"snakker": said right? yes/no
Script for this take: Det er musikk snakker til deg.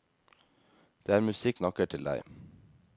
yes